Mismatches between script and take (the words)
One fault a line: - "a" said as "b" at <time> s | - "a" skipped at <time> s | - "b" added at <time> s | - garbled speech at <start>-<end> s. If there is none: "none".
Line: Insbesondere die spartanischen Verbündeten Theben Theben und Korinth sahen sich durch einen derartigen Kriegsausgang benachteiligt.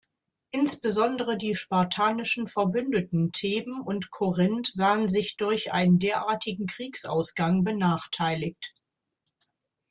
- "Theben" skipped at 3.8 s